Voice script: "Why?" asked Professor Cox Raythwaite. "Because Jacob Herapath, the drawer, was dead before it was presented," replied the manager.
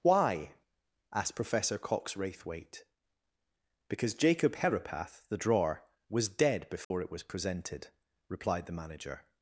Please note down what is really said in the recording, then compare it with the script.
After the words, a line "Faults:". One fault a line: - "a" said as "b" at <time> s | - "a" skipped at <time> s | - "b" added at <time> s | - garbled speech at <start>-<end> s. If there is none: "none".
"Why?" asked Professor Cox Raythwaite. "Because Jacob Herapath, the drawer, was dead before it was presented," replied the manager.
Faults:
none